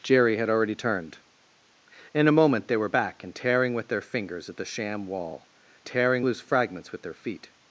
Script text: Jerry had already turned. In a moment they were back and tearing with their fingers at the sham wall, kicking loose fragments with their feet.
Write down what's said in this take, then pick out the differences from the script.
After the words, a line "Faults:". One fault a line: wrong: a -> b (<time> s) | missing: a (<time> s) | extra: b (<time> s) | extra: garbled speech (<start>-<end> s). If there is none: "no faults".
Jerry had already turned. In a moment they were back and tearing with their fingers at the sham wall, tearing loose fragments with their feet.
Faults:
wrong: kicking -> tearing (5.9 s)